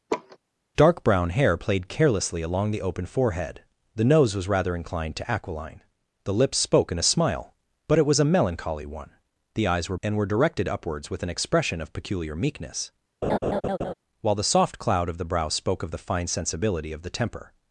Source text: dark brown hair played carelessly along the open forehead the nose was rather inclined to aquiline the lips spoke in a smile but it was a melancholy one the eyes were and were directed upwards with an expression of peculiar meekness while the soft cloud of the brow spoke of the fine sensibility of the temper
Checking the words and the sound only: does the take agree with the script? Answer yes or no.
no